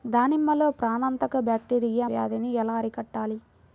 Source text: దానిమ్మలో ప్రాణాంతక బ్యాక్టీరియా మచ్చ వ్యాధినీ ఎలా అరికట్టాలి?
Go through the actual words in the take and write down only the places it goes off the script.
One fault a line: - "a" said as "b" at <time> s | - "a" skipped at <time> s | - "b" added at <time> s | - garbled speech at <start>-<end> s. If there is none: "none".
- "మచ్చ" skipped at 2.1 s